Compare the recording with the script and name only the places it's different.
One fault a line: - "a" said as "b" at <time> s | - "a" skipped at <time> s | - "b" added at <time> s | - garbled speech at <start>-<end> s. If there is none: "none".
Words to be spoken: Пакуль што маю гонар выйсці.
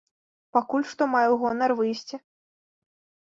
none